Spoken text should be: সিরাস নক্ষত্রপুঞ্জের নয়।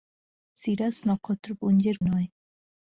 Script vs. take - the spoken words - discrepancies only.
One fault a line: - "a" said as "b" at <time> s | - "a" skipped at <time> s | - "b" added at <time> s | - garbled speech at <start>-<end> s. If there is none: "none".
none